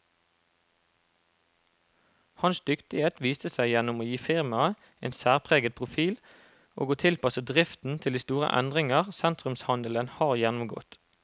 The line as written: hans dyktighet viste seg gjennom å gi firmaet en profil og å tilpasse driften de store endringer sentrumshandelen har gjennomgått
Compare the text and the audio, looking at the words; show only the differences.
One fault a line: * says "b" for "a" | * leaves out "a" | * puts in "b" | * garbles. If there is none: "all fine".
* puts in "særpreget"
* puts in "til"